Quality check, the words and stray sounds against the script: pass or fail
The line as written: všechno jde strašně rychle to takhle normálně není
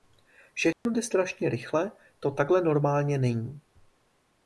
fail